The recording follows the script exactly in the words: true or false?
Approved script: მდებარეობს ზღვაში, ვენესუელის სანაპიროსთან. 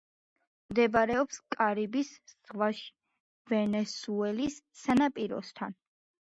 false